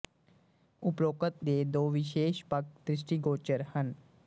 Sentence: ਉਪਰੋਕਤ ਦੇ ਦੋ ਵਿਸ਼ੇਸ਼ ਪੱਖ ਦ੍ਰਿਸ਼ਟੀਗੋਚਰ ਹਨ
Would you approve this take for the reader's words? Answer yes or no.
yes